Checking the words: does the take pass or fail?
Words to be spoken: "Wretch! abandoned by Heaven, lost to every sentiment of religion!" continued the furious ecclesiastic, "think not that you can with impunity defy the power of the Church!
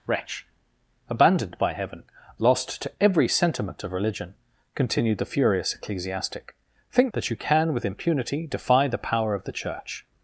fail